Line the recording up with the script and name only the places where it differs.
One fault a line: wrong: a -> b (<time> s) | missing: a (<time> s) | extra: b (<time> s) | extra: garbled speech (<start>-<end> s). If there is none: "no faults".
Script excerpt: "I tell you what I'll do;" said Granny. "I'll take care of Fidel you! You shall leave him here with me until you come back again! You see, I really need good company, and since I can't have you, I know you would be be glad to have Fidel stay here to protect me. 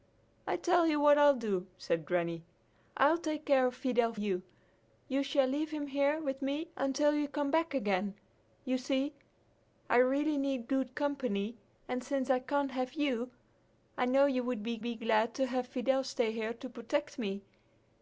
no faults